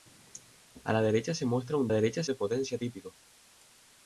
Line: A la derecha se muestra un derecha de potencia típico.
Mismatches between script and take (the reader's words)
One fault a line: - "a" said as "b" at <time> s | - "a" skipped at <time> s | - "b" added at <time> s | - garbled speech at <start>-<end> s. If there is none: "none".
none